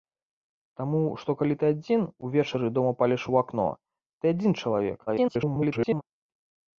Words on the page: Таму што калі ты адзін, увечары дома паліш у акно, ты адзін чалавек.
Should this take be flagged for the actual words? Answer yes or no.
yes